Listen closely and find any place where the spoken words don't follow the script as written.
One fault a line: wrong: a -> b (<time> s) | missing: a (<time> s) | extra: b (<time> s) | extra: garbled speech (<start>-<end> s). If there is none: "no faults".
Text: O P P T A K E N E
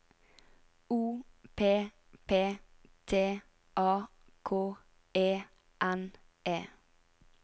no faults